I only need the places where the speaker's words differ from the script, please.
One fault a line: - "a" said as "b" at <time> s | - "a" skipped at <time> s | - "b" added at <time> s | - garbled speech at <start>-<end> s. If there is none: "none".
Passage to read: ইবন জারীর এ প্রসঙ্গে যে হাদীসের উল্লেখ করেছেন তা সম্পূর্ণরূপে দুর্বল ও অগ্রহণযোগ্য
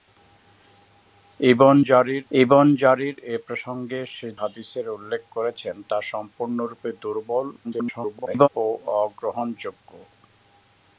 - "ইবন জারীর" added at 2.3 s
- "যে" skipped at 4.0 s
- garbled speech at 7.6-8.5 s